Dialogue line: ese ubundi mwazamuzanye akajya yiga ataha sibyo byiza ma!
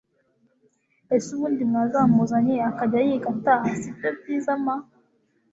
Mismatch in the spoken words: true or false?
false